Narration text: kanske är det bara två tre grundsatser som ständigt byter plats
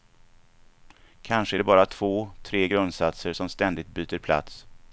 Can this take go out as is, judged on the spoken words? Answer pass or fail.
pass